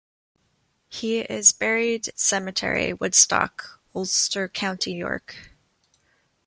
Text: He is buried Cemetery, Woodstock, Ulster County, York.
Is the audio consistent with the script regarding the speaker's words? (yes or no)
yes